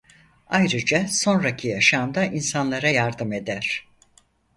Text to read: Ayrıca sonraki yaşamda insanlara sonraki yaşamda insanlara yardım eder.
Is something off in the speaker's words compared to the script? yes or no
yes